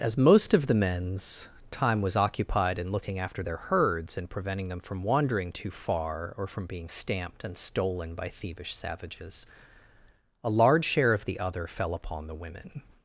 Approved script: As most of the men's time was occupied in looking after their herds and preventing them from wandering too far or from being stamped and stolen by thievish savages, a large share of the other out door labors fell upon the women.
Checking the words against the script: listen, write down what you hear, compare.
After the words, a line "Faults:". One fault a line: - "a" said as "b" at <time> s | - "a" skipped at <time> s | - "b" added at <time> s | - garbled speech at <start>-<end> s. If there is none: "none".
As most of the men's time was occupied in looking after their herds and preventing them from wandering too far or from being stamped and stolen by thievish savages, a large share of the other fell upon the women.
Faults:
- "out door labors" skipped at 11.7 s